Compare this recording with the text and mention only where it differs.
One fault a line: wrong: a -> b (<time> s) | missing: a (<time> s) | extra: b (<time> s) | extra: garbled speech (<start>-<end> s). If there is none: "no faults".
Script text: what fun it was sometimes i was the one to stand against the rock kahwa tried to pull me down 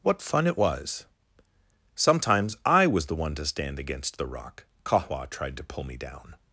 no faults